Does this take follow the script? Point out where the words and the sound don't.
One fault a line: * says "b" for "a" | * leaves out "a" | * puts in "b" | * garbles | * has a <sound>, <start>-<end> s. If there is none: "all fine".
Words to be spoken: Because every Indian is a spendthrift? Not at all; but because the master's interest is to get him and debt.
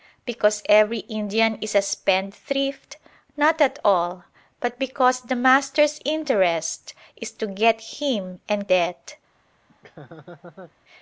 * has a laugh, 9.7-10.7 s